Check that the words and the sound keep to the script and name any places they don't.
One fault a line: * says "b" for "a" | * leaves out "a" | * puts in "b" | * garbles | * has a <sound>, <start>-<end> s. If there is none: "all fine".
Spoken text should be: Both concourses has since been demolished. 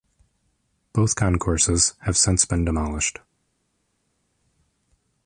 * says "have" for "has"